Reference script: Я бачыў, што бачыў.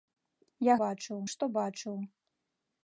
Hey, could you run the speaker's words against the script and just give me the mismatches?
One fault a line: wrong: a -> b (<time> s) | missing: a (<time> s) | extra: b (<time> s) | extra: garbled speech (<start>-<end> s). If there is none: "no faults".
no faults